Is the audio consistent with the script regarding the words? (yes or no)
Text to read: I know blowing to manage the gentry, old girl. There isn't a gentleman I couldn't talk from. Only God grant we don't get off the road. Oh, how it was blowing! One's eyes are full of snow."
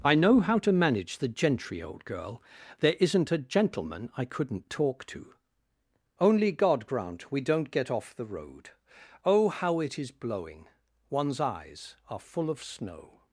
no